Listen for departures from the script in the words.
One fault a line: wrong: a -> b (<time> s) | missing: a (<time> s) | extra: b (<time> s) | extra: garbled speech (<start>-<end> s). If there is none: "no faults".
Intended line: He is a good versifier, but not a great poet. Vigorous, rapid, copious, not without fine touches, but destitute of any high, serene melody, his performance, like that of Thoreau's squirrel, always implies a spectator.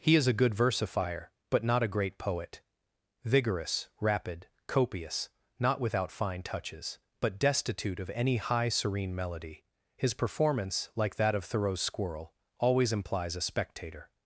no faults